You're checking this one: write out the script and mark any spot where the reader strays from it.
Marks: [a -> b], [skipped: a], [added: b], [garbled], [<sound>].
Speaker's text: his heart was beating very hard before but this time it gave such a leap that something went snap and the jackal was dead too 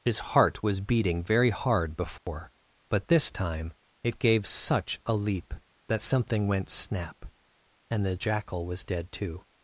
his heart was beating very hard before [dropout] but this time it gave such a leap that something went snap and the jackal was dead too